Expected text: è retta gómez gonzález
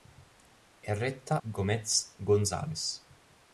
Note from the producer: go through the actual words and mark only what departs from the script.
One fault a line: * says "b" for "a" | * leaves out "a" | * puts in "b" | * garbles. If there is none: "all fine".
all fine